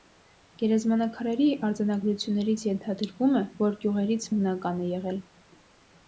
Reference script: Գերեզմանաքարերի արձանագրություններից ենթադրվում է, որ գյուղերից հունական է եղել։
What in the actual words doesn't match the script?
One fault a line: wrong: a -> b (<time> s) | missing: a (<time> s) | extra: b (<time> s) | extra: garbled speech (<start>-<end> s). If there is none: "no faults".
no faults